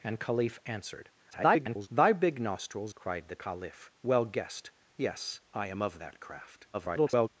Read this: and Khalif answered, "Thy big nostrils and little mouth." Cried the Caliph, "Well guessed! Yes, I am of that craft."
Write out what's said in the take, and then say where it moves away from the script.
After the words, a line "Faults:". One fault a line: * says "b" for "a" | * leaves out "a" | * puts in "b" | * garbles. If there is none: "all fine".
and Khalif answered, [garbled] "Thy big nostrils." Cried the Caliph, "Well guessed! Yes, I am of that craft." [garbled]
Faults:
* garbles
* leaves out "and little mouth"
* garbles